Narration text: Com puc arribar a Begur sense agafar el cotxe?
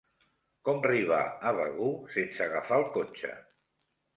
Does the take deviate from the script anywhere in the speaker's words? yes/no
yes